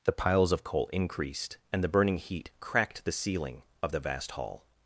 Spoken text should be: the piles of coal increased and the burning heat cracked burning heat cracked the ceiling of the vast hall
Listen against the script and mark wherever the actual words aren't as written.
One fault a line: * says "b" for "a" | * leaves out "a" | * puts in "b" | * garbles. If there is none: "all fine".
* leaves out "burning heat cracked"